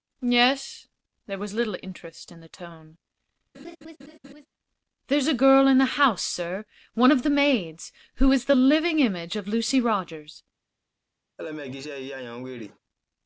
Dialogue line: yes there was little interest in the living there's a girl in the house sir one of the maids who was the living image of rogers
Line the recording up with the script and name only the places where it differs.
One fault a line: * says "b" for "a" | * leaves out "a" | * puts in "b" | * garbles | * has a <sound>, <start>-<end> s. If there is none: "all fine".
* says "tone" for "living"
* has a laugh, 3.5-4.5 s
* says "is" for "was"
* puts in "lucy"
* has a laugh, 11.4-12.8 s